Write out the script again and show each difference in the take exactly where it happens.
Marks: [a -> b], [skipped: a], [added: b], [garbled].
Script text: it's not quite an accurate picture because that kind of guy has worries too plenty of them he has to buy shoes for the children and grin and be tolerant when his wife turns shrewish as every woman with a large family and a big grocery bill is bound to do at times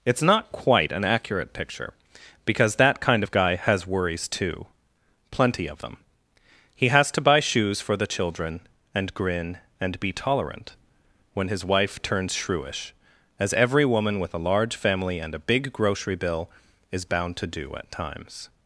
it's not quite an accurate picture because that kind of guy has worries too plenty of them he has to buy shoes for the children and grin and be tolerant when his wife turns shrewish as every woman with a large family and a big grocery bill is bound to do at times